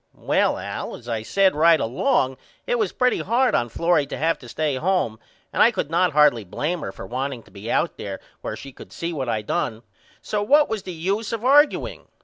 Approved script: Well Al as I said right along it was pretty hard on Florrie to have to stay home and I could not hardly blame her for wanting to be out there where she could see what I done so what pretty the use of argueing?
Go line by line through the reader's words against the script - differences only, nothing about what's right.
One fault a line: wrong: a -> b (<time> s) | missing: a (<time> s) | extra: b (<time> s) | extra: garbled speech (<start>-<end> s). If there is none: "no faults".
wrong: pretty -> was (10.7 s)